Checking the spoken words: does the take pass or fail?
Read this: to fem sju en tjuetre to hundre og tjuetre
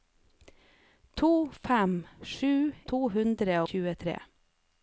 fail